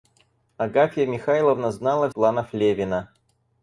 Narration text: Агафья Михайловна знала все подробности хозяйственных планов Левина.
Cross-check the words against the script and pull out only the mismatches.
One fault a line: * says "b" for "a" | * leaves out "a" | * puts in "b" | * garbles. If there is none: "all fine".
* leaves out "все подробности хозяйственных"